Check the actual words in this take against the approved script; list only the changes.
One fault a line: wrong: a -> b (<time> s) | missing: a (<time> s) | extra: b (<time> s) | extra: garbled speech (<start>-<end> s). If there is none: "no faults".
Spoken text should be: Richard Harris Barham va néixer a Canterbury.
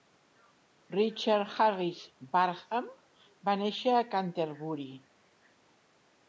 no faults